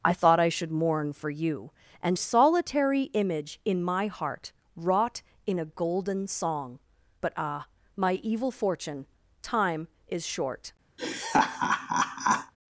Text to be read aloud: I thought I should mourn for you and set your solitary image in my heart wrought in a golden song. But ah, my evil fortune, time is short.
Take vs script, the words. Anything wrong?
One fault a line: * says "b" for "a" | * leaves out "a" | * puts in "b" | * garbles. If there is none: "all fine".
* leaves out "set your"